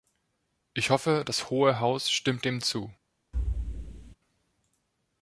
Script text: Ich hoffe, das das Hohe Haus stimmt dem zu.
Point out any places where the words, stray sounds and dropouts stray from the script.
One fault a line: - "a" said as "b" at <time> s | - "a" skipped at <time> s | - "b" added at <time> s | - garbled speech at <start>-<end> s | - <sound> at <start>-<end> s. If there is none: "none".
- "das" skipped at 1.5 s
- thud at 3.3-4.2 s